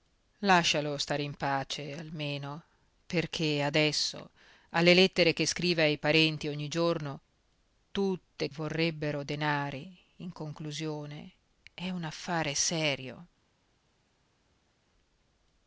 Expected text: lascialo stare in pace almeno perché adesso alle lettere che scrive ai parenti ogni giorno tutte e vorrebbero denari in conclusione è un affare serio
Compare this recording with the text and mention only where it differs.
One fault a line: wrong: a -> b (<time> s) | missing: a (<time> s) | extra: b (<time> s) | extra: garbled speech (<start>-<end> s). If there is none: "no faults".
no faults